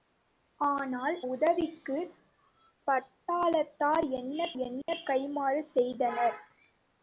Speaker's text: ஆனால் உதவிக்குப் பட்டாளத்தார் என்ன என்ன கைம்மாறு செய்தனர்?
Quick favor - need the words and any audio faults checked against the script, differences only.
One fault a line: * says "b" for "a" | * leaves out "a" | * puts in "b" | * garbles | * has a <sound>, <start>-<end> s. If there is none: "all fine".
* has a dropout, 4.8-4.9 s